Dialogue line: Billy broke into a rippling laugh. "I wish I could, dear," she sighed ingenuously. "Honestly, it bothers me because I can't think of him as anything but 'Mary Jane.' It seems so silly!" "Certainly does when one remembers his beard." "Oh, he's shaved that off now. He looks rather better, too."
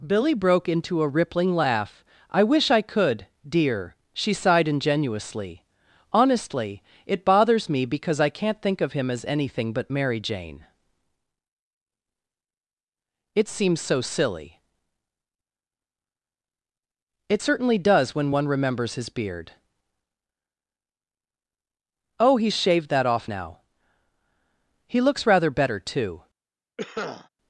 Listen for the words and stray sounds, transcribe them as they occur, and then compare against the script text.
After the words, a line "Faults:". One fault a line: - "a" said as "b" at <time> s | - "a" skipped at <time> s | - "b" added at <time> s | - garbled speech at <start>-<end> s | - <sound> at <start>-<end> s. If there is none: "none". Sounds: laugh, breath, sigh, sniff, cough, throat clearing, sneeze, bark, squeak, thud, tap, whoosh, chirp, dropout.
Billy broke into a rippling laugh. "I wish I could, dear," she sighed ingenuously. "Honestly, it bothers me because I can't think of him as anything but 'Mary Jane.' It seems so silly!" "It certainly does when one remembers his beard." "Oh, he's shaved that off now. He looks rather better, too."
Faults:
- "It" added at 17.3 s
- cough at 26.8-27.3 s